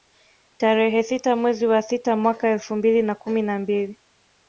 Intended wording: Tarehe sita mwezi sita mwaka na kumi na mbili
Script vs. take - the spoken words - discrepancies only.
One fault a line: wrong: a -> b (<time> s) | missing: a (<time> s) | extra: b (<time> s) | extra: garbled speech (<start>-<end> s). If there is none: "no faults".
extra: wa (1.7 s)
extra: elfu mbili (2.5 s)